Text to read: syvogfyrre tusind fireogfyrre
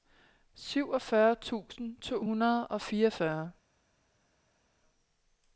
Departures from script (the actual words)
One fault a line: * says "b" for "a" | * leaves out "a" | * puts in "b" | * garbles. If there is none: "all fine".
* puts in "to hundrede og"